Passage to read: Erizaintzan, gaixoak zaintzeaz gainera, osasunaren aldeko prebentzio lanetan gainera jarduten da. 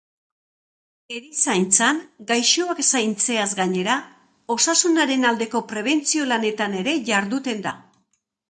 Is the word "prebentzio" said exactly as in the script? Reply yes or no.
yes